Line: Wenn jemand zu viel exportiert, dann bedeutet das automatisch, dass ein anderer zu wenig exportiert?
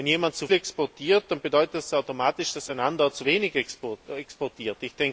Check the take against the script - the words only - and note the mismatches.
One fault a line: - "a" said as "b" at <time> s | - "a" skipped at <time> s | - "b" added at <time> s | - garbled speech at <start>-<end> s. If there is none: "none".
- "viel" skipped at 0.5 s